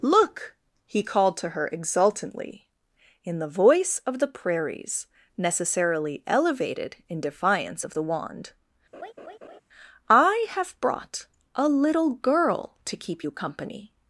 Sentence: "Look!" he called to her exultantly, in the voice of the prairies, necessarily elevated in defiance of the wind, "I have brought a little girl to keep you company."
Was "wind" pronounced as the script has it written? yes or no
no